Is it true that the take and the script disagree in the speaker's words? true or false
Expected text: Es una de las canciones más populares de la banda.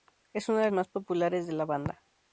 true